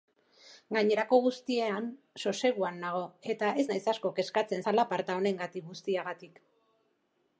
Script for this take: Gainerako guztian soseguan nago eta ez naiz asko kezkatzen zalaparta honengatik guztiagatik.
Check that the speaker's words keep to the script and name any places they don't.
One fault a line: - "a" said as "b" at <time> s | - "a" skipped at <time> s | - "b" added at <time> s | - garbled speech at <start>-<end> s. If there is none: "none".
none